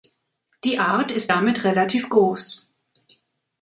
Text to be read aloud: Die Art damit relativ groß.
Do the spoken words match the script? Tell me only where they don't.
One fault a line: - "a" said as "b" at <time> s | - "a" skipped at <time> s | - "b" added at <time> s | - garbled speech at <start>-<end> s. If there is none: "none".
- "ist" added at 1.1 s